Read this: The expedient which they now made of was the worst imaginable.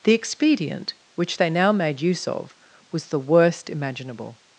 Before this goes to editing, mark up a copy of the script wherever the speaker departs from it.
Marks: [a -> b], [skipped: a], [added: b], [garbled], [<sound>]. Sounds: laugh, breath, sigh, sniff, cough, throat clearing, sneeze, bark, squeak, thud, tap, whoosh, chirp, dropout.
The expedient which they now made [added: use] of was the worst imaginable.